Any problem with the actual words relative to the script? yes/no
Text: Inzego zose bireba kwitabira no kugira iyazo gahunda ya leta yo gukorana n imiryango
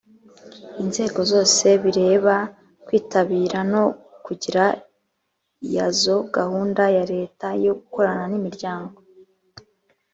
no